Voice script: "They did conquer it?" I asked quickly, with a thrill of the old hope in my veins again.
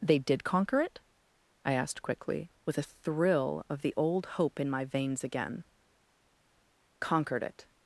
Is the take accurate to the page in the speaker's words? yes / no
no